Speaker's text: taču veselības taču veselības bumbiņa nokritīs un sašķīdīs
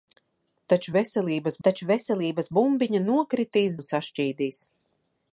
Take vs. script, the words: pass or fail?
pass